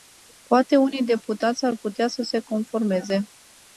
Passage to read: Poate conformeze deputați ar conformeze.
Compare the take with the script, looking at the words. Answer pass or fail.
fail